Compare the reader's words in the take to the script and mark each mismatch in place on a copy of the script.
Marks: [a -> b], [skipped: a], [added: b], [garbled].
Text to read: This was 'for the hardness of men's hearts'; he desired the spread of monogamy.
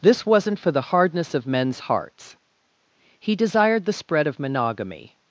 This [was -> wasn't] 'for the hardness of men's hearts'; he desired the spread of monogamy.